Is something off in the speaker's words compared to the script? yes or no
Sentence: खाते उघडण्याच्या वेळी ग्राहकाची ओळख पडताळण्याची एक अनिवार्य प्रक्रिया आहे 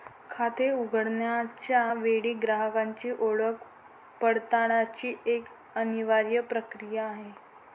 no